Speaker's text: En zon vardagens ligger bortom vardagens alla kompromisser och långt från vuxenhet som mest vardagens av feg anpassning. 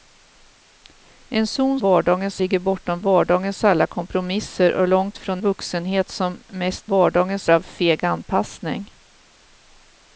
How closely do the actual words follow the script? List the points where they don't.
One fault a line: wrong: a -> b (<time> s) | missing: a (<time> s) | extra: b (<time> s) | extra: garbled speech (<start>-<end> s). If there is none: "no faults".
no faults